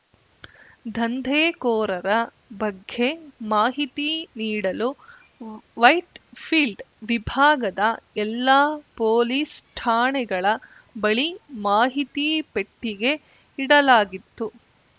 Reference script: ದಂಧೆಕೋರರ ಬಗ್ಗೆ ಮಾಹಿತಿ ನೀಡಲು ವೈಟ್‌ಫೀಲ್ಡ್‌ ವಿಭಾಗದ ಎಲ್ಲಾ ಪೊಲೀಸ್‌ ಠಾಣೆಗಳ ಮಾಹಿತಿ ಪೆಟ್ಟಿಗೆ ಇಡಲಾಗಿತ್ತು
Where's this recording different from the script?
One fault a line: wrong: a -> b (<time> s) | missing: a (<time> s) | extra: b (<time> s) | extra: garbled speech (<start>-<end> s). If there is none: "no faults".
extra: ಬಳಿ (10.9 s)